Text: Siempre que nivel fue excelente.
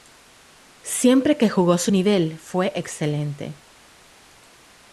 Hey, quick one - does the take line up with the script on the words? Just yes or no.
no